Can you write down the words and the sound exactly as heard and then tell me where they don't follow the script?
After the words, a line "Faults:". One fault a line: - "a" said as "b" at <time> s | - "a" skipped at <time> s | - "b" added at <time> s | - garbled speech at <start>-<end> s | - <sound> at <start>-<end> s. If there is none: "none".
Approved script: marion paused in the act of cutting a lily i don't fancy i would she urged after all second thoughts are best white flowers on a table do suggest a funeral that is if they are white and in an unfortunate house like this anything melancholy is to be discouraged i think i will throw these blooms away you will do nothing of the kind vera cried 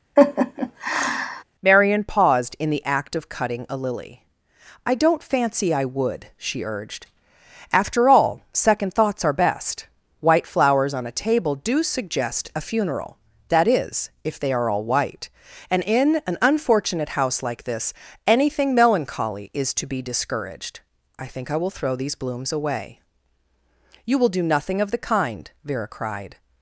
marion paused in the act of cutting a lily i don't fancy i would she urged after all second thoughts are best white flowers on a table do suggest a funeral that is if they are all white and in an unfortunate house like this anything melancholy is to be discouraged i think i will throw these blooms away you will do nothing of the kind vera cried
Faults:
- laugh at 0.2-1.4 s
- "all" added at 14.7 s